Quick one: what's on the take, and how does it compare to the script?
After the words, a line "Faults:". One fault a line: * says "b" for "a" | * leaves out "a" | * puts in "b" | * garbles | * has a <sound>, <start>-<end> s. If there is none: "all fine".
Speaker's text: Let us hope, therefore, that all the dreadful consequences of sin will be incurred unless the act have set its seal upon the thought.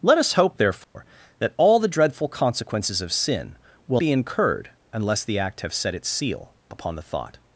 Let us hope, therefore, that all the dreadful consequences of sin will be incurred unless the act have set its seal upon the thought.
Faults:
* has a dropout, 0.8-1.0 s